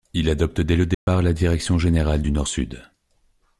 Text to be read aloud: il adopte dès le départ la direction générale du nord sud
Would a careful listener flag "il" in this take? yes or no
no